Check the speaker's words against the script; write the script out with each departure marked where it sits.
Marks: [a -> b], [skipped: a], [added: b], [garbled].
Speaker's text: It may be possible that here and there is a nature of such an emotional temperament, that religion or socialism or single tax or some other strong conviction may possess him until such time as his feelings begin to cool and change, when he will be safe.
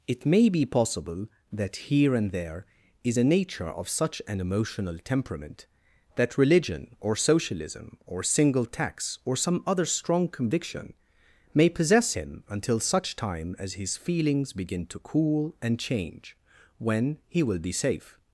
It may be possible that here and there is a nature of such an emotional temperament, that religion or socialism or single tax or some other strong conviction may possess him until such time as his feelings begin to cool and change, when he will be safe.